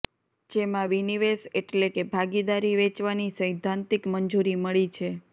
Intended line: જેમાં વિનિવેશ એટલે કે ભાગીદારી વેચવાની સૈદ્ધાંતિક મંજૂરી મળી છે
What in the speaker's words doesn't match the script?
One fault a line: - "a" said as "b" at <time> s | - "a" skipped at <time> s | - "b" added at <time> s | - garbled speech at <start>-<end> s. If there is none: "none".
none